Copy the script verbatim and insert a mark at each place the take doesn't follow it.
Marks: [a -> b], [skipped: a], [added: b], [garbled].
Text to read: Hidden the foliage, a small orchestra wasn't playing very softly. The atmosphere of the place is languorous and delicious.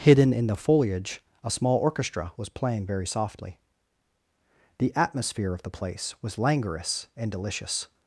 Hidden [added: in] the foliage, a small orchestra [wasn't -> was] playing very softly. The atmosphere of the place [is -> was] languorous and delicious.